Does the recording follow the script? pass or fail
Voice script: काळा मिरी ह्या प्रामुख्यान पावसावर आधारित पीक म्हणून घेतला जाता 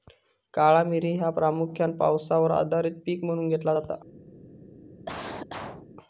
pass